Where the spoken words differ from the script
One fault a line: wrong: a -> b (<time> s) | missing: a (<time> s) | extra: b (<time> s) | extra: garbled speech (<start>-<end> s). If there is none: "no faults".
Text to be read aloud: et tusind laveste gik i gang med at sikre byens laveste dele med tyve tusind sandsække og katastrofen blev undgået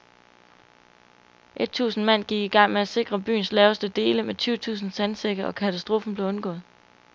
wrong: laveste -> mand (2.0 s)